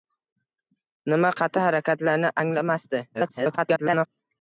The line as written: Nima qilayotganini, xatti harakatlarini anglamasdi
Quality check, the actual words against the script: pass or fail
fail